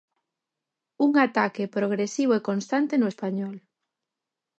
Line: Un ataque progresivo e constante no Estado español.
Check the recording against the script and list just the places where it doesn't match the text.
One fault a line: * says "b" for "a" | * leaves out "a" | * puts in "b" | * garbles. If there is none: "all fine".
* leaves out "Estado"